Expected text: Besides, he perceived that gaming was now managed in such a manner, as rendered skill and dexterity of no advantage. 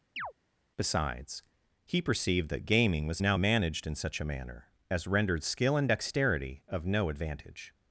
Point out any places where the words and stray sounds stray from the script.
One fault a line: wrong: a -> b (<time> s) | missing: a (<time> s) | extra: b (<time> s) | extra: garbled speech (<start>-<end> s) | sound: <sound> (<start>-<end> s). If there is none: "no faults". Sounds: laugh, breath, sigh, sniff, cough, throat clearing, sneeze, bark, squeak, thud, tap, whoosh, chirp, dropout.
sound: chirp (0.2-0.3 s)